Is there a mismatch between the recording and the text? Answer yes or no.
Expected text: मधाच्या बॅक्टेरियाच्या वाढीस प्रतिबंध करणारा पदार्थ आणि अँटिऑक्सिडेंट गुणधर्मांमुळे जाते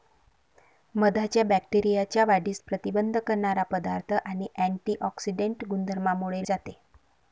no